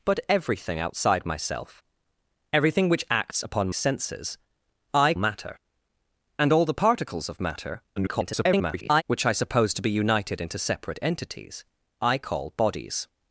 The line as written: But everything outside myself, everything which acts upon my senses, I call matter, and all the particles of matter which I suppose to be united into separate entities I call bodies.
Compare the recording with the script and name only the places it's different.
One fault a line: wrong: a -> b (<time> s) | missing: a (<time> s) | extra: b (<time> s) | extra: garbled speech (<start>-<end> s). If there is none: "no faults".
missing: my (3.7 s)
missing: call (5.1 s)
extra: garbled speech (8.0-9.0 s)